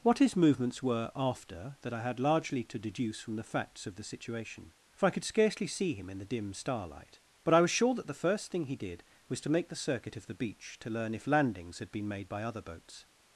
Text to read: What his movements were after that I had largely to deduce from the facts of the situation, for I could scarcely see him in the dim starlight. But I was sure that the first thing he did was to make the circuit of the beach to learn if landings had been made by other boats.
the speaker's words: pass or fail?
pass